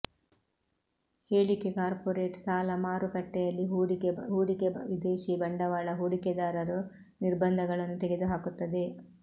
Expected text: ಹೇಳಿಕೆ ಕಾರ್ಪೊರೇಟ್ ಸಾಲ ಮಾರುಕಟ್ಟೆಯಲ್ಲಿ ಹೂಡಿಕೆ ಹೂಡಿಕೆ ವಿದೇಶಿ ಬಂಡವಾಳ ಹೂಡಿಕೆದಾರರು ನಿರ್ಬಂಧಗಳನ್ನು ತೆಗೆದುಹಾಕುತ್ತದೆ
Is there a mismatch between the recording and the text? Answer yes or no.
no